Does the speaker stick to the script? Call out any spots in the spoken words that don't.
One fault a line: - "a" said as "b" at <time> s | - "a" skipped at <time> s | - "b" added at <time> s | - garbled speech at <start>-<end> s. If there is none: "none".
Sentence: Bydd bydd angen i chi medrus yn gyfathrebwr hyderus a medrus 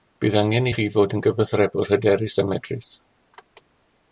- "bydd" skipped at 0.3 s
- "medrus" said as "fod" at 1.0 s